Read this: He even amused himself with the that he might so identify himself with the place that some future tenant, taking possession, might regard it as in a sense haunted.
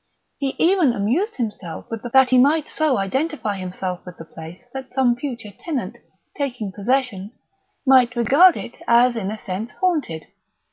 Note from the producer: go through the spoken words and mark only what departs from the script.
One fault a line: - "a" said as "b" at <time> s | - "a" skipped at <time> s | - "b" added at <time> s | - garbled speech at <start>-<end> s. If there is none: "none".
none